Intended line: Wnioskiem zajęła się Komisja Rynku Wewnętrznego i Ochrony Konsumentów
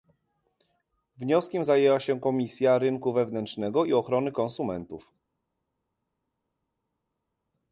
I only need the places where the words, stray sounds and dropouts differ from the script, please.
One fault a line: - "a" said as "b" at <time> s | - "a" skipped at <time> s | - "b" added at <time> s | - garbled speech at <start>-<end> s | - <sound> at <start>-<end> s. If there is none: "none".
none